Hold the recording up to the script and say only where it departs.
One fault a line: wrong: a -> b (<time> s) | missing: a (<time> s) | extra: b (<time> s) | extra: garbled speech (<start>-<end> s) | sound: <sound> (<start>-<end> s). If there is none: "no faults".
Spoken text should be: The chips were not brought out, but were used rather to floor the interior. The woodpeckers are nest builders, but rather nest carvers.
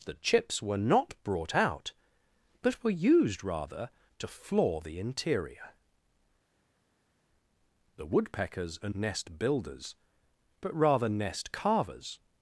no faults